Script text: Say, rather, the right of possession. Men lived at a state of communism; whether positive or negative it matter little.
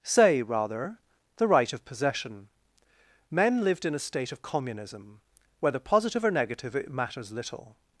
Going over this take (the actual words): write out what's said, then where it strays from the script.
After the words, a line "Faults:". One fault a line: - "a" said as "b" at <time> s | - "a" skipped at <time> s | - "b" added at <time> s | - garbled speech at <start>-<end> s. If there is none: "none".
Say, rather, the right of possession. Men lived in a state of communism; whether positive or negative it matters little.
Faults:
- "at" said as "in" at 3.9 s
- "matter" said as "matters" at 6.9 s